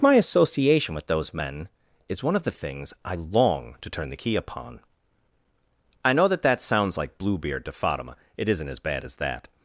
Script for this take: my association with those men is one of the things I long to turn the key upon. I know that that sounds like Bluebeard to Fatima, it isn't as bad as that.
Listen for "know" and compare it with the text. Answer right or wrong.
right